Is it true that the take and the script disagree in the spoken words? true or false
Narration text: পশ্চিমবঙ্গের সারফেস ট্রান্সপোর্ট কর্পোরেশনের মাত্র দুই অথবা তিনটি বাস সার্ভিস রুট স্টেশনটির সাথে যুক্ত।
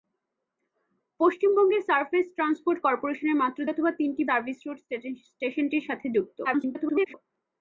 true